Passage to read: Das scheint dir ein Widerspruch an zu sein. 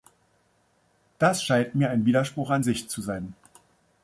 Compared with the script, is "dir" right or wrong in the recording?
wrong